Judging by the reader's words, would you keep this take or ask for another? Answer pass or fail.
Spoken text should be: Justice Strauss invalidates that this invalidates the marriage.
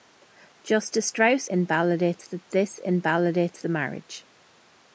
pass